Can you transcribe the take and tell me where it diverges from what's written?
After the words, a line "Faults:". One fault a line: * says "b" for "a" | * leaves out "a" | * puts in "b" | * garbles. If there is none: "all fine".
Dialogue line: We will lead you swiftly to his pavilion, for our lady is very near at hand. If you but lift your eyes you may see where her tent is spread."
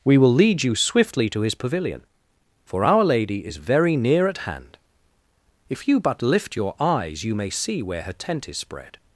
We will lead you swiftly to his pavilion, for our lady is very near at hand. If you but lift your eyes you may see where her tent is spread."
Faults:
all fine